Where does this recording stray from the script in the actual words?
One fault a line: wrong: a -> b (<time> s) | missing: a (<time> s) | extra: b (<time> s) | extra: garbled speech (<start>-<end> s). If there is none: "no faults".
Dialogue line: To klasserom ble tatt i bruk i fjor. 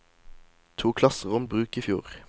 missing: ble tatt (1.4 s)